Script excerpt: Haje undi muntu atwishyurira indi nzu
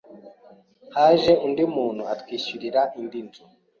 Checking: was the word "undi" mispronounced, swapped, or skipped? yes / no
no